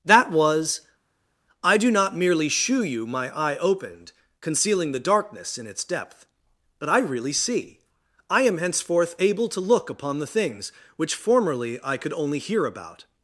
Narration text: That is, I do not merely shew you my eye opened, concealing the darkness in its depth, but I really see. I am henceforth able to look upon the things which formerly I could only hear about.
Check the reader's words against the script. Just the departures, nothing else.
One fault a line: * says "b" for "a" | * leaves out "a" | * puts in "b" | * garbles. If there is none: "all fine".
* says "was" for "is"